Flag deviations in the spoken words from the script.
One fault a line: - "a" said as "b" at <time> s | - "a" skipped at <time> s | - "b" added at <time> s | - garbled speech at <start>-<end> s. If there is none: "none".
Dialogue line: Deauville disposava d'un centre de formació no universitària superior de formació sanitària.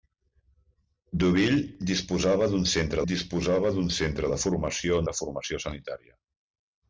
- "de formació no universitària superior" said as "disposava d'un centre de formació" at 3.1 s